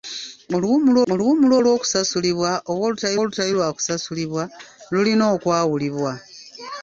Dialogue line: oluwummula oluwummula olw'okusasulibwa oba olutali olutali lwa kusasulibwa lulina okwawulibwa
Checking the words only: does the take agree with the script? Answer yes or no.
yes